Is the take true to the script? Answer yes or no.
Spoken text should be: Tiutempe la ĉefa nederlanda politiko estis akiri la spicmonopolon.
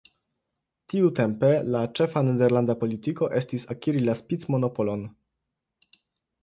yes